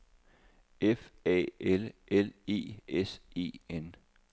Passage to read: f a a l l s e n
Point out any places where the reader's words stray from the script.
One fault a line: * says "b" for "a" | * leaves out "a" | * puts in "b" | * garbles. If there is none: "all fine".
* says "l" for "a"
* says "e" for "l"